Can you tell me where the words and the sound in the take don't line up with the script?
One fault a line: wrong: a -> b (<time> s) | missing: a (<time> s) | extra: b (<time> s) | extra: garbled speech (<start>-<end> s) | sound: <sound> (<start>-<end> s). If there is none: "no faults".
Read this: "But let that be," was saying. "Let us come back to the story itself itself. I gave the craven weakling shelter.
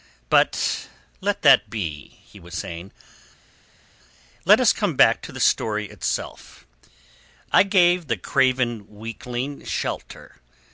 extra: he (2.2 s)
missing: itself (6.7 s)